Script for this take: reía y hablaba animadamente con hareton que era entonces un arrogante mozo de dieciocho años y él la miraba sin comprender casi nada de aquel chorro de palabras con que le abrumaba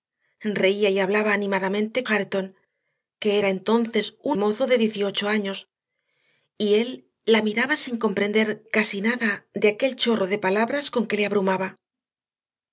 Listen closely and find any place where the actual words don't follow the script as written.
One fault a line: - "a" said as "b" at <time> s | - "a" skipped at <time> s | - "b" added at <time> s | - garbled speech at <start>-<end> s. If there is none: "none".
- "con" skipped at 2.0 s
- "arrogante" skipped at 4.4 s